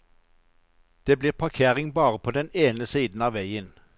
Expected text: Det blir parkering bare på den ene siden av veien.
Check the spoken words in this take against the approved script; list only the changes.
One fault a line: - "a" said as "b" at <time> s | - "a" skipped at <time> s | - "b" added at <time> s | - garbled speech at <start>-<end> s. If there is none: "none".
none